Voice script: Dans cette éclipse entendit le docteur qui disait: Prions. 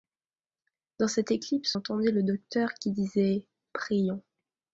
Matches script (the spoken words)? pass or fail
pass